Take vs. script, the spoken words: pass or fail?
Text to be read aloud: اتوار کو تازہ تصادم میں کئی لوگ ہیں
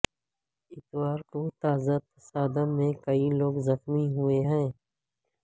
fail